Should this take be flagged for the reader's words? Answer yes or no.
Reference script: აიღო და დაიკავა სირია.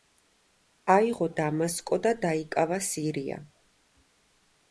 yes